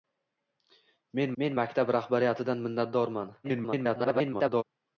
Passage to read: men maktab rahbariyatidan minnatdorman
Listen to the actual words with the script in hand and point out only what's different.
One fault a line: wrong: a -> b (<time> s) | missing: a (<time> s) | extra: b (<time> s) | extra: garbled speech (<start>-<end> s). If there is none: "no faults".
extra: men (1.4 s)
extra: garbled speech (3.4-4.6 s)